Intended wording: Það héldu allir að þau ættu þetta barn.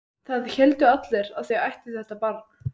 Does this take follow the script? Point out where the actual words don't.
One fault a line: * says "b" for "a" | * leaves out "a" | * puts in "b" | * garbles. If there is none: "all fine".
all fine